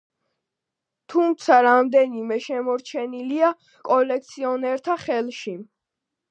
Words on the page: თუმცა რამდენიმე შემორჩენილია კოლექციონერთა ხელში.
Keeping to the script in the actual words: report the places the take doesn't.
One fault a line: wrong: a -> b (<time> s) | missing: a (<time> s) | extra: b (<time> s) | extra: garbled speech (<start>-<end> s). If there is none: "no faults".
no faults